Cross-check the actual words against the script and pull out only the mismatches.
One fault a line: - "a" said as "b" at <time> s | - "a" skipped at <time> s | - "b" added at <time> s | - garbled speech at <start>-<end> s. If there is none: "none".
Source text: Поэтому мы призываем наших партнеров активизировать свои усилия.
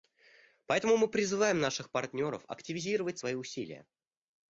none